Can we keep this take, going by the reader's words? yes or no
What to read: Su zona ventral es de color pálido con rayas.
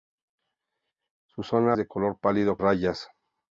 no